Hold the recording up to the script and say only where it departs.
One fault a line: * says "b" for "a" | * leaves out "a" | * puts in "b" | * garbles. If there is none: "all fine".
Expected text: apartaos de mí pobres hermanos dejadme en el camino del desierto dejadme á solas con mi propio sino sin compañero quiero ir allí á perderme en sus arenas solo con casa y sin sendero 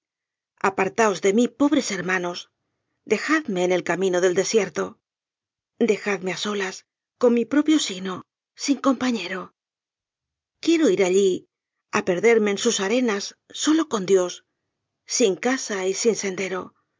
* puts in "dios sin"